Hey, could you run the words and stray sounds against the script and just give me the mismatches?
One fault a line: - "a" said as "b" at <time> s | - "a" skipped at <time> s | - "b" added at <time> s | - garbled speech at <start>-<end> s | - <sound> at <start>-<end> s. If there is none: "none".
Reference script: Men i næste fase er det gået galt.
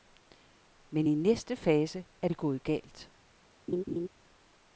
- laugh at 3.7-4.1 s